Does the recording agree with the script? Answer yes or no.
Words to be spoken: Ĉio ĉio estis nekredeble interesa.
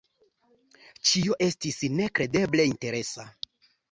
no